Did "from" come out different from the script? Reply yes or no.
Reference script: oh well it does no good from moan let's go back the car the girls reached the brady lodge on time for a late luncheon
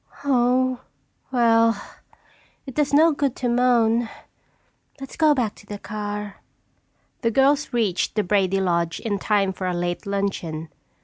yes